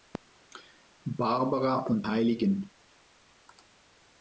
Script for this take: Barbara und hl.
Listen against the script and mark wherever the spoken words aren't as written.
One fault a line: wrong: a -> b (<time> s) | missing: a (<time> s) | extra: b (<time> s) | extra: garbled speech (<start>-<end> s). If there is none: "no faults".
no faults